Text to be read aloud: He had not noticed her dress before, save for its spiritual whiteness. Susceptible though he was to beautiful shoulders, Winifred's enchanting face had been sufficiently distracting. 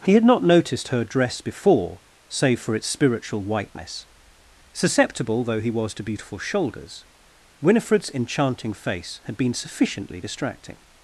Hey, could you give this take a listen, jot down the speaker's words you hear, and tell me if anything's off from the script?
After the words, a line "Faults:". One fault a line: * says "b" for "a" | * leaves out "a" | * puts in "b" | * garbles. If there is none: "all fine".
He had not noticed her dress before, save for its spiritual whiteness. Susceptible though he was to beautiful shoulders, Winifred's enchanting face had been sufficiently distracting.
Faults:
all fine